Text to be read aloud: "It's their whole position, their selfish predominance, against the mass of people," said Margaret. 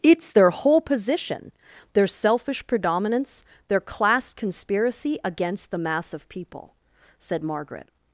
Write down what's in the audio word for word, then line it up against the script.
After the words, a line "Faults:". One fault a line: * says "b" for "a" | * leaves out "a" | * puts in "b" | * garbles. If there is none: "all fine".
"It's their whole position, their selfish predominance, their class conspiracy against the mass of people," said Margaret.
Faults:
* puts in "their class conspiracy"